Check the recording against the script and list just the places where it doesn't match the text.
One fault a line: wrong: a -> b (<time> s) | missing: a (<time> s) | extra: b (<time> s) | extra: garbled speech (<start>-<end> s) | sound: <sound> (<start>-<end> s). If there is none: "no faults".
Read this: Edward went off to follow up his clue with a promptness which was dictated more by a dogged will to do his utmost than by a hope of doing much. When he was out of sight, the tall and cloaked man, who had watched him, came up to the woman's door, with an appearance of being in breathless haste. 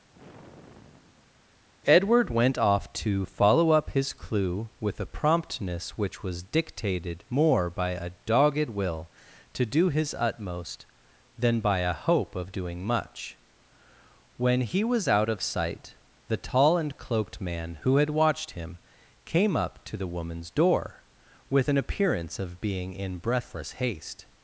sound: sigh (0.1-1.7 s)